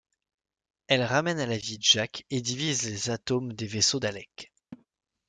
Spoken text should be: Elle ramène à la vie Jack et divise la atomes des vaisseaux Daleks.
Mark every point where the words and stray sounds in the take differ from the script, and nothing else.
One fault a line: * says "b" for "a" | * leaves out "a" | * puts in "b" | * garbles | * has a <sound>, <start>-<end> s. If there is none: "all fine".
* says "les" for "la"
* has a laugh, 4.7-4.9 s